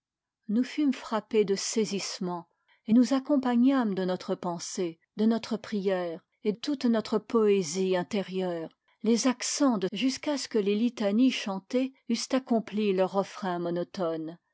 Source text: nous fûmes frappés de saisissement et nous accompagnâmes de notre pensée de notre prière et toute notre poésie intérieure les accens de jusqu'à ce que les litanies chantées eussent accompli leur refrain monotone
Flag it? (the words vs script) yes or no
no